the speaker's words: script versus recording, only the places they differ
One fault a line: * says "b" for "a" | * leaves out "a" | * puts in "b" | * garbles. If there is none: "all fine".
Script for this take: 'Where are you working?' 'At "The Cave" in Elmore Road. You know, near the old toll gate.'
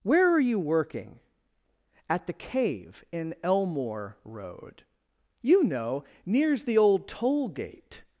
* says "nears" for "near"